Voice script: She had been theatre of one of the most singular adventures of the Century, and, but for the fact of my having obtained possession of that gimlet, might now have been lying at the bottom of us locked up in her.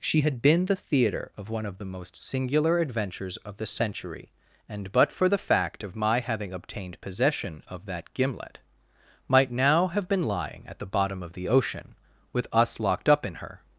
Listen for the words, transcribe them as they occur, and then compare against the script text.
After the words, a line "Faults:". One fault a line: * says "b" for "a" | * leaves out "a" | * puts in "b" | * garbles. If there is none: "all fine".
She had been the theatre of one of the most singular adventures of the Century, and, but for the fact of my having obtained possession of that gimlet, might now have been lying at the bottom of the ocean, with us locked up in her.
Faults:
* puts in "the"
* puts in "the ocean with"